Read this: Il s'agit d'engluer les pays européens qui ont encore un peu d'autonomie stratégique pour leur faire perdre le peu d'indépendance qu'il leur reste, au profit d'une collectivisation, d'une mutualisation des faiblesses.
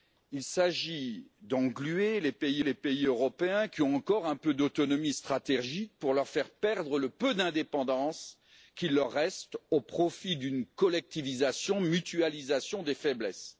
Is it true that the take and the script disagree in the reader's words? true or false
true